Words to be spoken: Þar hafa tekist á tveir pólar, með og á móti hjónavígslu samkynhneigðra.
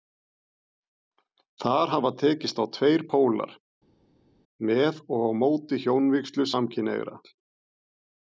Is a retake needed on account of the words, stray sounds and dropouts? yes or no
no